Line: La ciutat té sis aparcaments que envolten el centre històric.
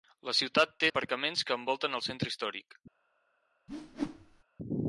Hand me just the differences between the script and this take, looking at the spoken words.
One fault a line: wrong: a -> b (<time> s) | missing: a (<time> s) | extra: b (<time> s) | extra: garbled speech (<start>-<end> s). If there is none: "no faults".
missing: sis (0.9 s)